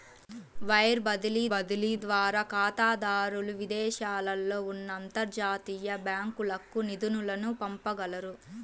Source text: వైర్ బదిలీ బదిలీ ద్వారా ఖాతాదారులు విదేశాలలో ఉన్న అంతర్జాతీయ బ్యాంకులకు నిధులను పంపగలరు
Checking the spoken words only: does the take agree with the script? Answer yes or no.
yes